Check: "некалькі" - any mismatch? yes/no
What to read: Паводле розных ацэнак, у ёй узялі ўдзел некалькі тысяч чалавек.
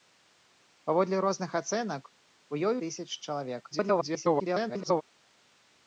yes